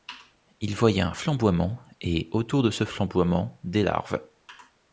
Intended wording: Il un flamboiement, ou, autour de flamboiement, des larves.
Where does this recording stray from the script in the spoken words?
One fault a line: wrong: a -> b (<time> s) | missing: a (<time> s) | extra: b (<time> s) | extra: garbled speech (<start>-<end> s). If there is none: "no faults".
extra: voyait (0.8 s)
wrong: ou -> et (2.0 s)
extra: ce (2.7 s)